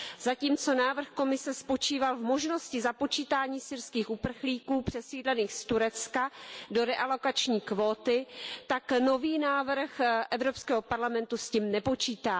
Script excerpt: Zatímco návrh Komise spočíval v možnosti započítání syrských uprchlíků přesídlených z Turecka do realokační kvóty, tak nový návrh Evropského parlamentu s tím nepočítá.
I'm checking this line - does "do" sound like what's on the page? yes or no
yes